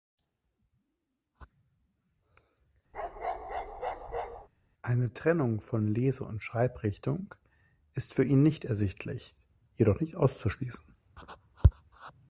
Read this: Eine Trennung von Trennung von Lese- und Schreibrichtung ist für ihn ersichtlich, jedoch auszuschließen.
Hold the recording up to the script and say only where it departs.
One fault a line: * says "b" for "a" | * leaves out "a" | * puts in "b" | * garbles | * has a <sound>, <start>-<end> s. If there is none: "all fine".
* has a bark, 2.9-4.5 s
* leaves out "Trennung von"
* puts in "nicht"
* puts in "nicht"